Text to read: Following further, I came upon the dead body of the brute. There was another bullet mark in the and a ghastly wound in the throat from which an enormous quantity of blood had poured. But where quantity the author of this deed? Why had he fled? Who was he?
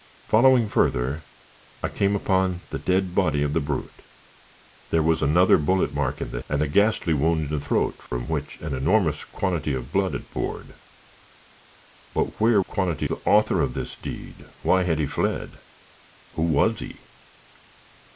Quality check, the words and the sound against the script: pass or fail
fail